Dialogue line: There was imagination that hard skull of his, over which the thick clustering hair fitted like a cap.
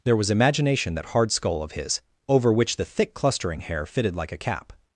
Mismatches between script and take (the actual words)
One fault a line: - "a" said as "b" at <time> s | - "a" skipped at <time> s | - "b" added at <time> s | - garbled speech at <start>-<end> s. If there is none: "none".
none